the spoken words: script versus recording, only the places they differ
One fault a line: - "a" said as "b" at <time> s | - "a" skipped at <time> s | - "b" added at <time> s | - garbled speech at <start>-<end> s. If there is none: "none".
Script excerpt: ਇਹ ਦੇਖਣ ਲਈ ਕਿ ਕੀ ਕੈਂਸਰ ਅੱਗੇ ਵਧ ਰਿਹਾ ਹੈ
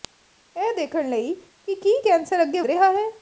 - "ਵਧ" skipped at 2.6 s